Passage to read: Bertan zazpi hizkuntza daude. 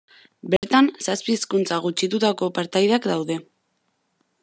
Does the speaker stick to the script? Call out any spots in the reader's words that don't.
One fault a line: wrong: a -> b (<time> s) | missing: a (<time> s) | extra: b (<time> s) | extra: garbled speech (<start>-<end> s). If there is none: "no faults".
extra: gutxitutako partaideak (1.9 s)